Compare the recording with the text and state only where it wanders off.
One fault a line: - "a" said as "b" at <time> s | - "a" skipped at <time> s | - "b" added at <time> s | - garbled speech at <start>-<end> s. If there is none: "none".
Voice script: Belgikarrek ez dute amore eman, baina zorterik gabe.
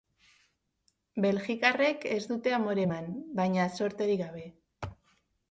none